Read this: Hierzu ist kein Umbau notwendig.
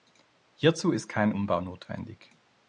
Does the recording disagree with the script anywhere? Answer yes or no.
no